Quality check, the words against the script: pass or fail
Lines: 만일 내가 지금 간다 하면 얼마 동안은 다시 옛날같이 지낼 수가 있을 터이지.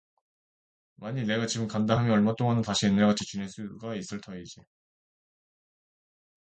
pass